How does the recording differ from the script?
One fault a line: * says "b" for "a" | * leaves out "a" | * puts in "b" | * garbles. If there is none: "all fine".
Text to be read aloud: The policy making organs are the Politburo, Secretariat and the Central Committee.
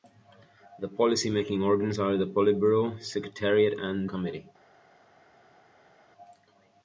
* leaves out "the Central"